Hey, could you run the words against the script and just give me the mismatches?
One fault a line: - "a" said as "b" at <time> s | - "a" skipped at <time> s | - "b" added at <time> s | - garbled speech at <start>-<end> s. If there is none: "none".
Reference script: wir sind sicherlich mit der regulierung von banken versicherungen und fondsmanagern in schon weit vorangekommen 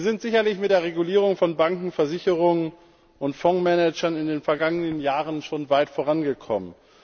- "den vergangenen jahren" added at 4.3 s